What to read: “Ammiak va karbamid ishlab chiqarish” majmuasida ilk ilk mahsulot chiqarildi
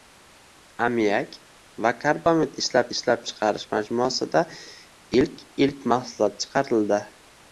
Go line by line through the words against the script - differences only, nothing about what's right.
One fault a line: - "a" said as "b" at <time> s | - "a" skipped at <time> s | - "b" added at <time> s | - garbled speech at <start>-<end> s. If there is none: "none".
- "ishlab" added at 3.0 s